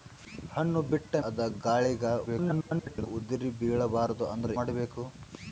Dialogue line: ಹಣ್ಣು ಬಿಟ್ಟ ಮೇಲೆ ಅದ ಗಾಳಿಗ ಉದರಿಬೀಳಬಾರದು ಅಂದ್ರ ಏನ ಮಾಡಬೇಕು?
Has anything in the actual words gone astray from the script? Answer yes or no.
yes